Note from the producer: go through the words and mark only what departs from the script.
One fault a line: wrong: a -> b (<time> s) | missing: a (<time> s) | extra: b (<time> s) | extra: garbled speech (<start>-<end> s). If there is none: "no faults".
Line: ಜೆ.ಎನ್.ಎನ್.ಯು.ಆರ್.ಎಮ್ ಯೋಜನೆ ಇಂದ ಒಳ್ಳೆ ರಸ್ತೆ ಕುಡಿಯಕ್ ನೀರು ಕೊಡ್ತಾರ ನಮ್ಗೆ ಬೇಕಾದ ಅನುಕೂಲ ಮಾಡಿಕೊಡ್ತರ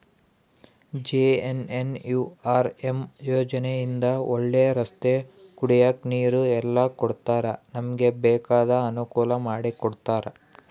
extra: ಎಲ್ಲ (6.6 s)